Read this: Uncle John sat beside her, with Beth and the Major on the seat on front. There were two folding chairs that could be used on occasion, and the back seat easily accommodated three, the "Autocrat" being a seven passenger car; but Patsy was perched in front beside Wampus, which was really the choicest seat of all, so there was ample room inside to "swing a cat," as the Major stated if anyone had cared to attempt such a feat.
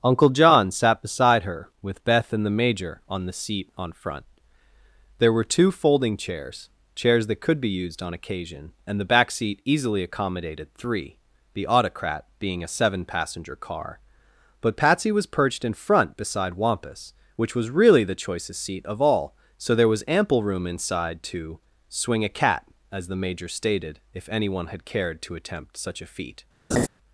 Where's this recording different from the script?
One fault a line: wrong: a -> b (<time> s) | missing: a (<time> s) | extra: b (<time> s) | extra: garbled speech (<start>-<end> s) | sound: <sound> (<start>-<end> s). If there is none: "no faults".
extra: chairs (6.9 s)
sound: laugh (26.7-26.9 s)